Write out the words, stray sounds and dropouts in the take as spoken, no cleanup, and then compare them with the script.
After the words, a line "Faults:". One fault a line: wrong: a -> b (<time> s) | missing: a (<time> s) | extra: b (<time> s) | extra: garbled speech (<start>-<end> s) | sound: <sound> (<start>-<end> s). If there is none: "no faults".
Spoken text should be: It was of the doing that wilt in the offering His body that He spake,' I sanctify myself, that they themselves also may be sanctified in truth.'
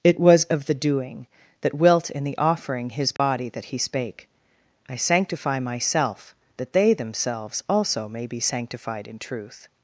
It was of the doing that wilt in the offering His body that He spake,' I sanctify myself, that they themselves also may be sanctified in truth.'
Faults:
sound: dropout (3.2-3.2 s)